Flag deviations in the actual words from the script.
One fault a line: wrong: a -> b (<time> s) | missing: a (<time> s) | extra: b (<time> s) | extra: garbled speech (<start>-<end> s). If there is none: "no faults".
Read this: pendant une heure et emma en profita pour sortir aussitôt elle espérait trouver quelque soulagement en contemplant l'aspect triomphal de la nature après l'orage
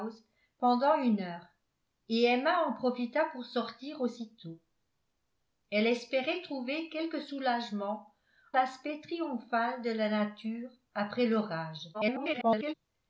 missing: en contemplant (8.1 s)
extra: garbled speech (11.9-12.7 s)